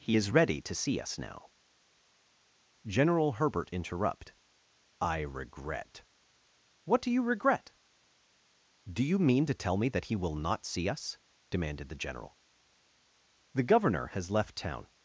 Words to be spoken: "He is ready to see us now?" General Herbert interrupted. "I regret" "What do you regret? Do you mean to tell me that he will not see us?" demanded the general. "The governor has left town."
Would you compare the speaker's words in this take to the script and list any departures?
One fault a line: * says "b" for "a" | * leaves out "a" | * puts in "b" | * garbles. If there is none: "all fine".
* says "interrupt" for "interrupted"